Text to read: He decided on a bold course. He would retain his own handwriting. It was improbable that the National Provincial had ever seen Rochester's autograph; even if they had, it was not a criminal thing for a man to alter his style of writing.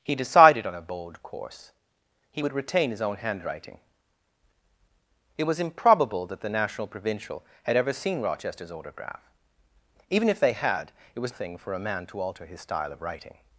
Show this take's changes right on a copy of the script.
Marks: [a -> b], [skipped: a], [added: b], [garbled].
He decided on a bold course. He would retain his own handwriting. It was improbable that the National Provincial had ever seen Rochester's autograph; even if they had, it was [skipped: not a criminal] thing for a man to alter his style of writing.